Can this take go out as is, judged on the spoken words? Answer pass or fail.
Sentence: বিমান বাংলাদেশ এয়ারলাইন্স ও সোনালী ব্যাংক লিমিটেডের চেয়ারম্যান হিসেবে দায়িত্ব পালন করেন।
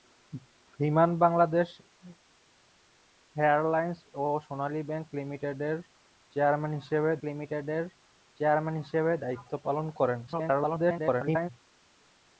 fail